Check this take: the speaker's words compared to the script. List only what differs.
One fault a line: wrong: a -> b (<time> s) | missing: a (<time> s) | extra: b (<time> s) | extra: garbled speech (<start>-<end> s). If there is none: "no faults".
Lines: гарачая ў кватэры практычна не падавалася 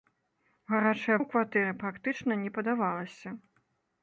no faults